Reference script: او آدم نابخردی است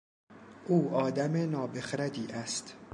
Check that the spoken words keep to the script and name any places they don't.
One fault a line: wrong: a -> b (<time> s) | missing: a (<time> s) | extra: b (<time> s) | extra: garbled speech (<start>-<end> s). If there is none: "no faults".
no faults